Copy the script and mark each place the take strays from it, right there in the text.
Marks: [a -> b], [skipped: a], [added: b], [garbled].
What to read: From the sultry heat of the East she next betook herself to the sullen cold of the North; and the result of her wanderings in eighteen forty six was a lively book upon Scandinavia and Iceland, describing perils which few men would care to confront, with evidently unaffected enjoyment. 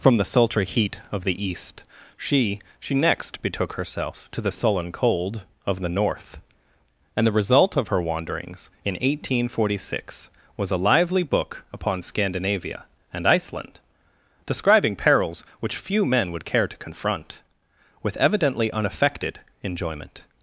From the sultry heat of the East she [added: she] next betook herself to the sullen cold of the North; and the result of her wanderings in eighteen forty six was a lively book upon Scandinavia and Iceland, describing perils which few men would care to confront, with evidently unaffected enjoyment.